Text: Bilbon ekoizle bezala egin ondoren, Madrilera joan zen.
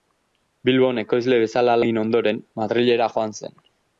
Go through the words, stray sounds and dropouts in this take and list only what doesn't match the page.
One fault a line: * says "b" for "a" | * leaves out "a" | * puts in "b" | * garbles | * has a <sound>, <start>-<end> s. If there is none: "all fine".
all fine